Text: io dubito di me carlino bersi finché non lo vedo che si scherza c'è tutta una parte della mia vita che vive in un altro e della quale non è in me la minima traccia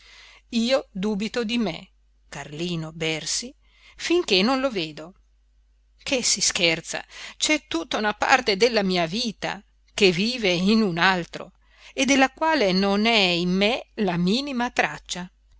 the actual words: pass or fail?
pass